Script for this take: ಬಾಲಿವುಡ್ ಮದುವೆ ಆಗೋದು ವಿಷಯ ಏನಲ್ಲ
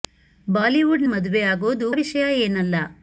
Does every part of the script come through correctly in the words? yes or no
yes